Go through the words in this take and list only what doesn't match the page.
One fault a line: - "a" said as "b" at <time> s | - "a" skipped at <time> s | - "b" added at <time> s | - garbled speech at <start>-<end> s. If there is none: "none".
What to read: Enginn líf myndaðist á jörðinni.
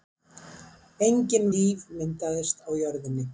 none